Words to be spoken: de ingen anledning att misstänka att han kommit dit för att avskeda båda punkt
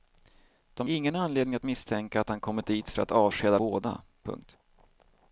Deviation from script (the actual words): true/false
false